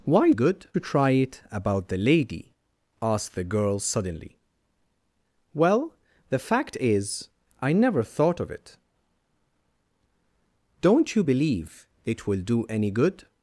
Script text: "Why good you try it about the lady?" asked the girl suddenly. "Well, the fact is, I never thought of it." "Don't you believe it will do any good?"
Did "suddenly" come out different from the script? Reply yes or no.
no